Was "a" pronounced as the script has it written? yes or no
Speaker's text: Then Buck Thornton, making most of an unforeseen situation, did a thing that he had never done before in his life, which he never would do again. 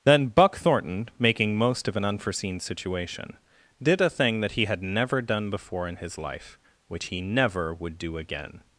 yes